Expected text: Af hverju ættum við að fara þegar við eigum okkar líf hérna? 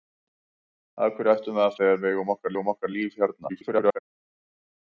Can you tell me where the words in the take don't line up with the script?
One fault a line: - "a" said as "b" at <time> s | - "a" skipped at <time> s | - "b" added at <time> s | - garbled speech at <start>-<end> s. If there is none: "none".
- "fara" skipped at 1.8 s
- "eigum okkar" added at 2.5 s
- garbled speech at 3.5-4.0 s